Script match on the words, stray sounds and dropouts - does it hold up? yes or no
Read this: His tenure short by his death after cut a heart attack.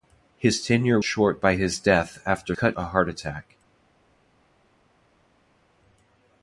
yes